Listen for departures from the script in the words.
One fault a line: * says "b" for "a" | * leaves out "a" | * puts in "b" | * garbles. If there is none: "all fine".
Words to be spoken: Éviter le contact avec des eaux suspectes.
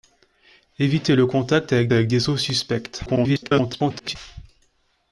* puts in "avec"
* garbles